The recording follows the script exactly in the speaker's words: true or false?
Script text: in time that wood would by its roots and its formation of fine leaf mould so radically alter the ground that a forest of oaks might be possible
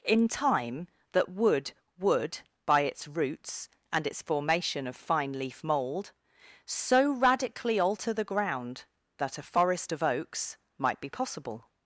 true